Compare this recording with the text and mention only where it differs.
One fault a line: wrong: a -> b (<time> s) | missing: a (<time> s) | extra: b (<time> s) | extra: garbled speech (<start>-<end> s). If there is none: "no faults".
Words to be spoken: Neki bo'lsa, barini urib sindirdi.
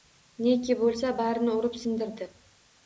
no faults